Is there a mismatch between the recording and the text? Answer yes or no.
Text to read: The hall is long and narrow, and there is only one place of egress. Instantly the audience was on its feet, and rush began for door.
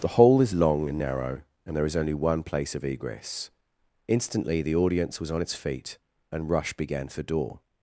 no